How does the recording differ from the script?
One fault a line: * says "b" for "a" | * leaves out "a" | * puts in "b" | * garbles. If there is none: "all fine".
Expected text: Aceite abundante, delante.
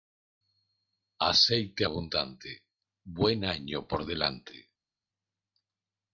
* puts in "buen año por"